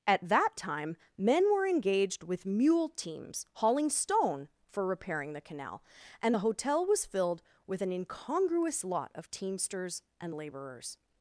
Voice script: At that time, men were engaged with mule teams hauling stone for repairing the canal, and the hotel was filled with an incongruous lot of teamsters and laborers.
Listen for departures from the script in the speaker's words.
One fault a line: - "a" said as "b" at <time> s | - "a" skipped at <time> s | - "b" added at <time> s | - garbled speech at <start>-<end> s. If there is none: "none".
none